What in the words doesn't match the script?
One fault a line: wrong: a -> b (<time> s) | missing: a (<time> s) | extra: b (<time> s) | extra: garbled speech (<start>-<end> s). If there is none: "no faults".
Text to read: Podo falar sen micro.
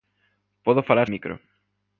missing: sen (1.1 s)